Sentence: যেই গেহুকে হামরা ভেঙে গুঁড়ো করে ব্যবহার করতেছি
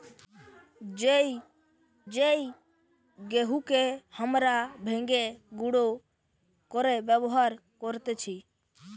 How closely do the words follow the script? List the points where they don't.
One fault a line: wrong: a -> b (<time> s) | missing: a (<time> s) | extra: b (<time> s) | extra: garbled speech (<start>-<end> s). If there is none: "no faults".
extra: যেই (2.1 s)